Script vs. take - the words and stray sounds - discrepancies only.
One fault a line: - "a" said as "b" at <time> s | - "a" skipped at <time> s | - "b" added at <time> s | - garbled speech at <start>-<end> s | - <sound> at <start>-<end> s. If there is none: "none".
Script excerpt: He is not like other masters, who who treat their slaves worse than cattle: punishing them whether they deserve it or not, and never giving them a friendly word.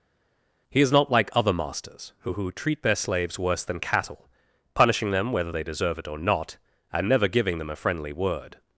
none